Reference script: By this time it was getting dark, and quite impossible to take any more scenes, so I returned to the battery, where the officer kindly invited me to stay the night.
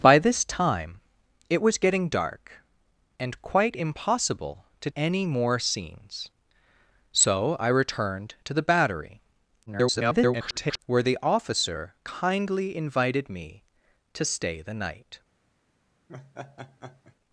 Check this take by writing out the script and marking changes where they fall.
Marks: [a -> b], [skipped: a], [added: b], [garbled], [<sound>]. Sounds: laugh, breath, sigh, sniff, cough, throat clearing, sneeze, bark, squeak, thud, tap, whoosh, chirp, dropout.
By this time it was getting dark, and quite impossible to [skipped: take] any more scenes, so I returned to the battery, [garbled] where the officer kindly invited me to stay the night. [laugh]